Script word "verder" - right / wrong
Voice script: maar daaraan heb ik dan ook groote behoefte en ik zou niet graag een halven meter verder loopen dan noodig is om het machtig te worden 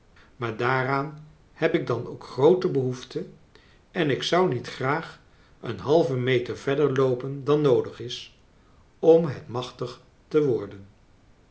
right